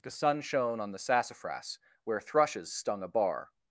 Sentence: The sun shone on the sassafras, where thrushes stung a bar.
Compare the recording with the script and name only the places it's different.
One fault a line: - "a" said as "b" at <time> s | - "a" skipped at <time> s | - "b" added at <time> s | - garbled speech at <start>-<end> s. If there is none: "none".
none